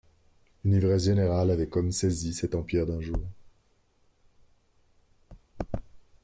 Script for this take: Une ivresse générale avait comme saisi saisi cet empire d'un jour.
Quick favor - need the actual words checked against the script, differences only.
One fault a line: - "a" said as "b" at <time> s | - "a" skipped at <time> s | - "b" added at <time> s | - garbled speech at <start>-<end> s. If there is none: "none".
- "saisi" skipped at 2.3 s